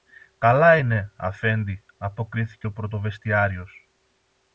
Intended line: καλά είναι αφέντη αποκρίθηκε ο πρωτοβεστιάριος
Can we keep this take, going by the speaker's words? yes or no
yes